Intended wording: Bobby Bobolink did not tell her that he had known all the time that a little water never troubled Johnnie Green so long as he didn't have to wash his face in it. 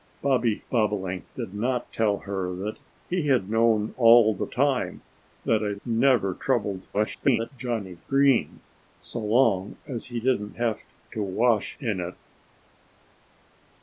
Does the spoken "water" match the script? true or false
false